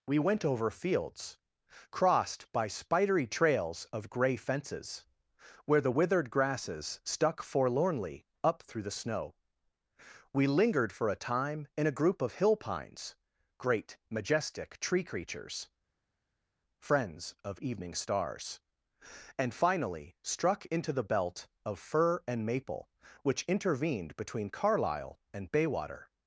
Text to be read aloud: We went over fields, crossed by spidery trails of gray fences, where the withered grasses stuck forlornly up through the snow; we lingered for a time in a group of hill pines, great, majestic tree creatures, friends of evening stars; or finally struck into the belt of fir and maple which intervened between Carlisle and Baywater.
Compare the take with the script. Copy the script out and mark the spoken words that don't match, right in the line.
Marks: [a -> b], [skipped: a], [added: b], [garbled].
We went over fields, crossed by spidery trails of gray fences, where the withered grasses stuck forlornly up through the snow; we lingered for a time in a group of hill pines, great, majestic tree creatures, friends of evening stars; [or -> and] finally struck into the belt of fir and maple which intervened between Carlisle and Baywater.